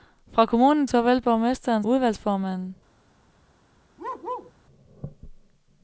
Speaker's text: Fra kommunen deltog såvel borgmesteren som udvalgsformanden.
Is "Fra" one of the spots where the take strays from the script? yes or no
no